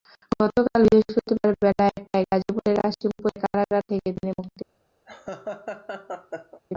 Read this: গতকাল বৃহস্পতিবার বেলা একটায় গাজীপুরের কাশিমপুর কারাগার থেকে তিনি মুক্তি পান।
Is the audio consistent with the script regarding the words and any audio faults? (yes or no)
no